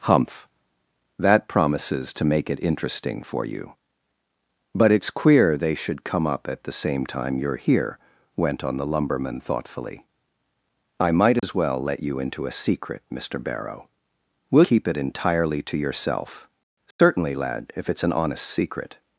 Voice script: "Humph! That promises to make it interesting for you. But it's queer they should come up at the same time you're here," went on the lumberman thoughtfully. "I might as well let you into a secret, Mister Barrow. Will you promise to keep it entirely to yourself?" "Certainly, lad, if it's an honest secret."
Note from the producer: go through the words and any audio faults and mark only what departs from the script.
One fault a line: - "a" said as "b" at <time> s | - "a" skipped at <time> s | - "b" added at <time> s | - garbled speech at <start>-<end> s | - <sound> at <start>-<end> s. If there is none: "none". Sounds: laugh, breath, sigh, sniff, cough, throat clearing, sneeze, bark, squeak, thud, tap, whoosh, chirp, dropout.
- dropout at 11.4-11.4 s
- "you promise to" skipped at 14.6 s
- dropout at 16.9-17.0 s